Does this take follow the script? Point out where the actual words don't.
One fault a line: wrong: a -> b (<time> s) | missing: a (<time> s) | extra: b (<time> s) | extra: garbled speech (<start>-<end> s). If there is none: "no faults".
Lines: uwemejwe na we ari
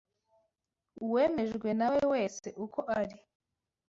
extra: wese uko (2.1 s)